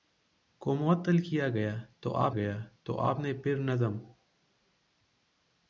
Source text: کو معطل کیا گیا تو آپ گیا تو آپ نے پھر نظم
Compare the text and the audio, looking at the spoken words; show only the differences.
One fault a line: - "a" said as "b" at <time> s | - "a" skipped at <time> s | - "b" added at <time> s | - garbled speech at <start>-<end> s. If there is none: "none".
none